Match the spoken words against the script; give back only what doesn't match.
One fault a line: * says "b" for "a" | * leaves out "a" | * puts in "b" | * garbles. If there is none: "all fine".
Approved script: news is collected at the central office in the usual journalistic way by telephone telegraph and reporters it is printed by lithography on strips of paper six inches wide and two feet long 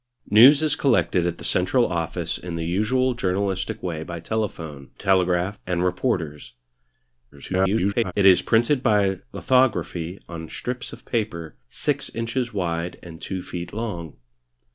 * garbles